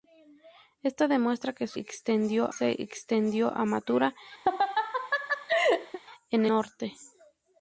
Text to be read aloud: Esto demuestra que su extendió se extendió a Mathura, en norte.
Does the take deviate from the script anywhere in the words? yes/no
no